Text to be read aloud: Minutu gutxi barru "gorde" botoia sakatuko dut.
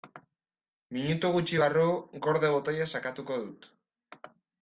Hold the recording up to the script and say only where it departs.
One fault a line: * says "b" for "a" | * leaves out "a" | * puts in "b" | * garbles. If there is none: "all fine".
all fine